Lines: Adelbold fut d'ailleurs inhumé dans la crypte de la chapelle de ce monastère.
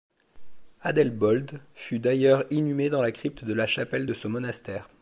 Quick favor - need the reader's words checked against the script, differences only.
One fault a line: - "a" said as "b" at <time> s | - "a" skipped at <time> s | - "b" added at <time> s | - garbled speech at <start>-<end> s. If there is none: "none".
none